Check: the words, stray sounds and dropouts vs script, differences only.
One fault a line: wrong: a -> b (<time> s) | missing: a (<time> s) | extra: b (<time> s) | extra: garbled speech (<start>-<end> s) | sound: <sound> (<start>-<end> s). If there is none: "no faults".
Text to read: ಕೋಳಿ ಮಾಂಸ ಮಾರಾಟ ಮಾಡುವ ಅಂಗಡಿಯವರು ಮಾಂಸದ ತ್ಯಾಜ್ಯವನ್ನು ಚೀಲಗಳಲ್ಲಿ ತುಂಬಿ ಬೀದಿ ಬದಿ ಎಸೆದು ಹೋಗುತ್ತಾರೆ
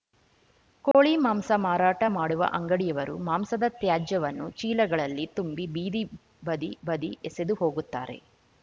sound: dropout (0.9-0.9 s)
extra: ಬದಿ (6.9 s)